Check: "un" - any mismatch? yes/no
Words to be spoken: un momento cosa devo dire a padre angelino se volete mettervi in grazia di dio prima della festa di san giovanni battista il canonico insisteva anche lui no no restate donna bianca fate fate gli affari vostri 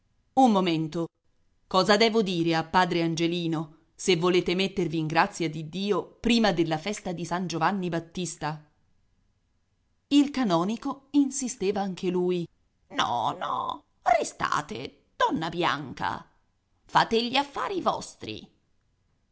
no